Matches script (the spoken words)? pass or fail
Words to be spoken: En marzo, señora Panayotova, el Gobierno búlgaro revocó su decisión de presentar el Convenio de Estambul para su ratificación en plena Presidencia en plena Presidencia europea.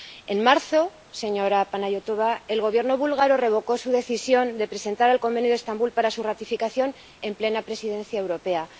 fail